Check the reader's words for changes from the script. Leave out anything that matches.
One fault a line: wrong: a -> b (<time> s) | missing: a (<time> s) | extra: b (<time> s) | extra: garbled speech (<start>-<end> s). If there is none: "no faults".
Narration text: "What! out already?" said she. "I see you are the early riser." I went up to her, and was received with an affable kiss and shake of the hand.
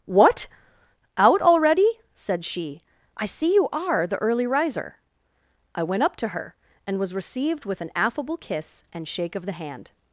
no faults